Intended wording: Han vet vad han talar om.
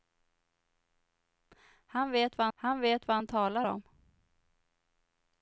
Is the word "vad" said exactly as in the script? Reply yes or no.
yes